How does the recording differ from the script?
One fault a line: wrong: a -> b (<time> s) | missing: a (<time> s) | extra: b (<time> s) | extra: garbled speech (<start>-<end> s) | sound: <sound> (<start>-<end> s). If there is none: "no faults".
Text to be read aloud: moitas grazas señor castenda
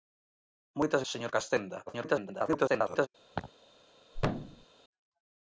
missing: grazas (1.0 s)
extra: garbled speech (1.9-3.1 s)
sound: laugh (3.3-3.5 s)
sound: thud (4.1-4.7 s)